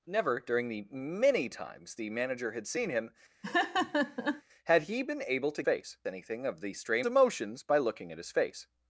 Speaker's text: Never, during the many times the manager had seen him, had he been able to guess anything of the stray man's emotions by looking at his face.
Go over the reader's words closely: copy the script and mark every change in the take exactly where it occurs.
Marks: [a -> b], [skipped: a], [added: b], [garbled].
Never, during the many times the manager had seen him, had he been able to [guess -> face] anything of the stray [skipped: man's] emotions by looking at his face.